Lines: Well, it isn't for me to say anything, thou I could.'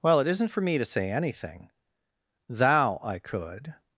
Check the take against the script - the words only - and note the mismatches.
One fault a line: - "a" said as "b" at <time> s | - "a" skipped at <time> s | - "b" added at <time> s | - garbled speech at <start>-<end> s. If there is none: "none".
none